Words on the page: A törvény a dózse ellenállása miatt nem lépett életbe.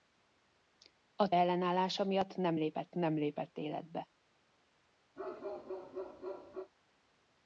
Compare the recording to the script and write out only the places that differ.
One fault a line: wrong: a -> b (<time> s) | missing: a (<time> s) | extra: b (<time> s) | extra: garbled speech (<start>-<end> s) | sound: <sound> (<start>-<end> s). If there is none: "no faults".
wrong: törvény a dózse ellenállása miatt -> ellenállása miatt nem lépett (1.3 s)
sound: bark (5.2-6.7 s)